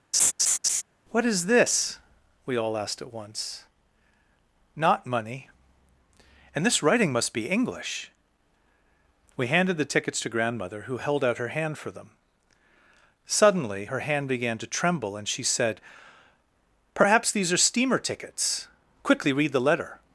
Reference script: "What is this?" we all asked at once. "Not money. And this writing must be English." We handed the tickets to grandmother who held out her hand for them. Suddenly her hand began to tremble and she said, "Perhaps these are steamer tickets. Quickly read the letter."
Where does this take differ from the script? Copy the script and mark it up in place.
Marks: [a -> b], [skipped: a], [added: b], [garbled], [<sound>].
[laugh] "What is this?" we all asked at once. "Not money. And this writing must be English." We handed the tickets to grandmother who held out her hand for them. Suddenly her hand began to tremble and she said, "Perhaps these are steamer tickets. Quickly read the letter."